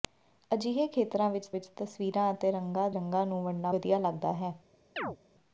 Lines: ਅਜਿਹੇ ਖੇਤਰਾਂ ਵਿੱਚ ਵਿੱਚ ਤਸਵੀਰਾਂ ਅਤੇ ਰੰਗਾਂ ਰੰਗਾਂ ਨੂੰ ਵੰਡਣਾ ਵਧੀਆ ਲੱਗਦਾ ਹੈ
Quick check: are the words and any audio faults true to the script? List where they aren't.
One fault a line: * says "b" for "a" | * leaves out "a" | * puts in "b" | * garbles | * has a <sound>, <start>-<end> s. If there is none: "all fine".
* has a chirp, 5.0-5.2 s